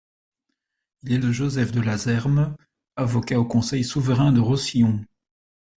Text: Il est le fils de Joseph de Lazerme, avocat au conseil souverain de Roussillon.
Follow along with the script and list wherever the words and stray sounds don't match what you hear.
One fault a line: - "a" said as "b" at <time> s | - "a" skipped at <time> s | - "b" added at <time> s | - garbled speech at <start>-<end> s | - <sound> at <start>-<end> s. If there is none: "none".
- "le fils" skipped at 1.2 s